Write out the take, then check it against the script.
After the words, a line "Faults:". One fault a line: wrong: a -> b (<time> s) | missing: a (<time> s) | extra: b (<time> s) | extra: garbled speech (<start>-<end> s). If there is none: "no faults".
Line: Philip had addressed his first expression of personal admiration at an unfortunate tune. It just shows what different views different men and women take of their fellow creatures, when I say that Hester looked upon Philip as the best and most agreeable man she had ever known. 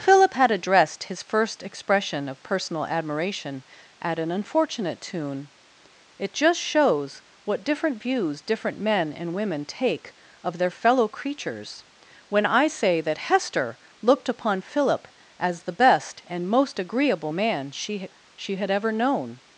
Philip had addressed his first expression of personal admiration at an unfortunate tune. It just shows what different views different men and women take of their fellow creatures, when I say that Hester looked upon Philip as the best and most agreeable man she she had ever known.
Faults:
extra: she (18.4 s)